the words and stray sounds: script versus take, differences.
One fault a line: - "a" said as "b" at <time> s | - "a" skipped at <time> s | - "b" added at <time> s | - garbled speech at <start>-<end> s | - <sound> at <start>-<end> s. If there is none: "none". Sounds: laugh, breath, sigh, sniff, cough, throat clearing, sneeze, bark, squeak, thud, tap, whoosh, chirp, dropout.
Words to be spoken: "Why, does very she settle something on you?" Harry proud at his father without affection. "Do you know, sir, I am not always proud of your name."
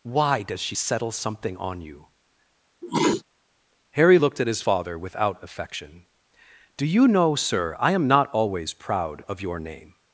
- "very" skipped at 0.6 s
- sneeze at 2.8-3.2 s
- "proud" said as "looked" at 4.1 s